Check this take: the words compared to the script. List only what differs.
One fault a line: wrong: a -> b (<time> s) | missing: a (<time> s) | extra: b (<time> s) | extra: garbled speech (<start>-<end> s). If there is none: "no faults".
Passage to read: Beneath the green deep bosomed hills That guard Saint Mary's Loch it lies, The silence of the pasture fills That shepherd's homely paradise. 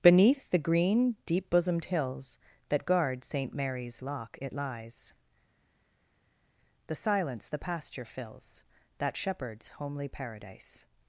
missing: of (7.5 s)